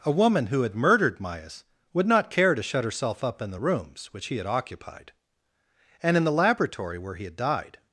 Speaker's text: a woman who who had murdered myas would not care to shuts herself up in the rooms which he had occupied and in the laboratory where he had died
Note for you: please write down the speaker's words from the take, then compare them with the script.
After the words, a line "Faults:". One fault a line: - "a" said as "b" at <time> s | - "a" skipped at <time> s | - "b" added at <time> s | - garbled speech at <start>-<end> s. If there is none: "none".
a woman who had murdered myas would not care to shut herself up in the rooms which he had occupied and in the laboratory where he had died
Faults:
- "who" skipped at 0.6 s
- "shuts" said as "shut" at 2.6 s